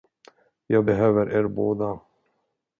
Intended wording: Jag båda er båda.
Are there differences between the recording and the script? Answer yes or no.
yes